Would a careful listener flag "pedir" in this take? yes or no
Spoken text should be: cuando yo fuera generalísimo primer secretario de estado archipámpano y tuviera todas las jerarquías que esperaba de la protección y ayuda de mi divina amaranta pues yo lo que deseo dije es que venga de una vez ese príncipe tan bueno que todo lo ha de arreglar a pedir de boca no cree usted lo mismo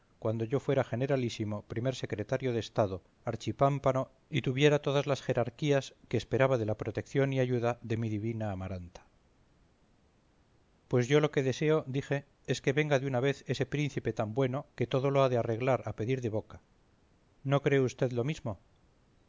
no